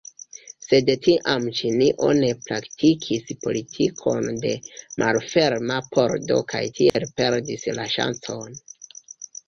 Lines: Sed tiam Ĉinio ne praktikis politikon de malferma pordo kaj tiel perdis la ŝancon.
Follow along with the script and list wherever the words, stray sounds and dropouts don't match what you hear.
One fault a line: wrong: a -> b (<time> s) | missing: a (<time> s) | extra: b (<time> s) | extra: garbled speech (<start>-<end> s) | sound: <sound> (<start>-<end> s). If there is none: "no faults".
sound: dropout (6.9-6.9 s)